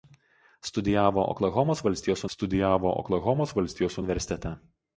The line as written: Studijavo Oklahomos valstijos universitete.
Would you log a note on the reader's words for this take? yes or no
yes